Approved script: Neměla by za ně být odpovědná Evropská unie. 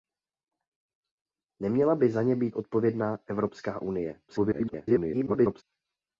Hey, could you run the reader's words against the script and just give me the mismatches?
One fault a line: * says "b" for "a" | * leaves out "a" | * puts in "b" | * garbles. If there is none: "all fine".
* garbles